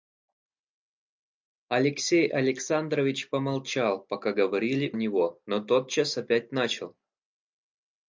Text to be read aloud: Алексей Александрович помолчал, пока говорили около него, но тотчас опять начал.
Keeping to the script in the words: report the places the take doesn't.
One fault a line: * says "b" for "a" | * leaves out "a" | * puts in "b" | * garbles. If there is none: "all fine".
* leaves out "около"